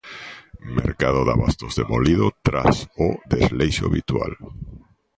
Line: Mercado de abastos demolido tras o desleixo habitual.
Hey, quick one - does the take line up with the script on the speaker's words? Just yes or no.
yes